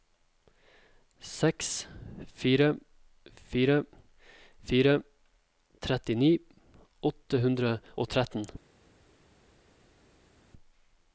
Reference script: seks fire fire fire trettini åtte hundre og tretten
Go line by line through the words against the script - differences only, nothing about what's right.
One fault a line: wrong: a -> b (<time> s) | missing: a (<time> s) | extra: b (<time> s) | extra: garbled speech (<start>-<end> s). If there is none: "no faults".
no faults